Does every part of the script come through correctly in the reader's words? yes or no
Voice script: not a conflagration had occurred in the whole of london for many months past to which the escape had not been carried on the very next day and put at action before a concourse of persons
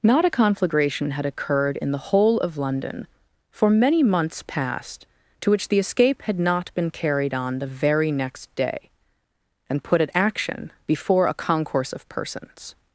yes